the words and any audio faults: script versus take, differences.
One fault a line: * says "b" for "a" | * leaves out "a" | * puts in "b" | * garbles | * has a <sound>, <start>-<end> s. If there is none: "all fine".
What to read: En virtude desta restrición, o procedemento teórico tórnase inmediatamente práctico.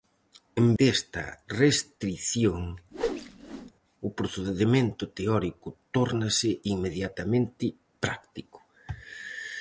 * leaves out "virtude"
* has a whoosh, 2.9-3.7 s